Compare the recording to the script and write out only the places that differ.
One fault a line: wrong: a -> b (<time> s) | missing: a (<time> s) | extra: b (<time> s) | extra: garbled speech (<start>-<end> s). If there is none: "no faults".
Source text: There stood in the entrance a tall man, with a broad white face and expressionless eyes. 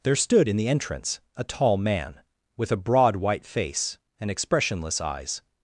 no faults